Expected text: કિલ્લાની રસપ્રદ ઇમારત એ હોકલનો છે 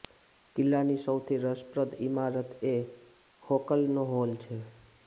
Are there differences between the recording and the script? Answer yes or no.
yes